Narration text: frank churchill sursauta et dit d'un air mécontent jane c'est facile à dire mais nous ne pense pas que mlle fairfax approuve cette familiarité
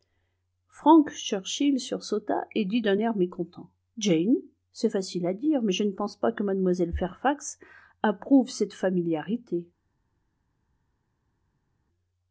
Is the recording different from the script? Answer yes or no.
yes